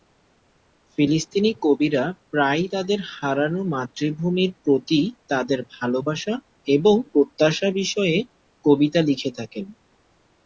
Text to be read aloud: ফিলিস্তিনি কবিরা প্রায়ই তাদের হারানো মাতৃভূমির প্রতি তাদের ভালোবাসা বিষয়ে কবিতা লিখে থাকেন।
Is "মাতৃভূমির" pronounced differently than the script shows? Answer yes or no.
no